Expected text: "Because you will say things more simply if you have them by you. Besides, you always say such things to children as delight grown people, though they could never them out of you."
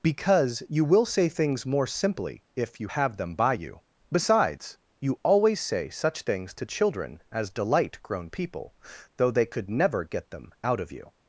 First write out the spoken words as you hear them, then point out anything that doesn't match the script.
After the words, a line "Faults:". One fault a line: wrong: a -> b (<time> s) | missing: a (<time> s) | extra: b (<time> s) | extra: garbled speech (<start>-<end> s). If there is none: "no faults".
"Because you will say things more simply if you have them by you. Besides, you always say such things to children as delight grown people, though they could never get them out of you."
Faults:
extra: get (10.0 s)